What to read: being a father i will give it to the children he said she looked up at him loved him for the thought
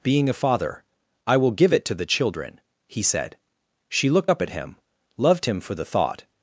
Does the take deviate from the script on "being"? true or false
false